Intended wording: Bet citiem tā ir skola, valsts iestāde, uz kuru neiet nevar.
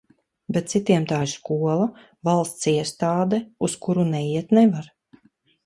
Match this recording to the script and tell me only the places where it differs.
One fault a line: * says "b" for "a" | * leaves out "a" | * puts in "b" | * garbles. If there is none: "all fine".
all fine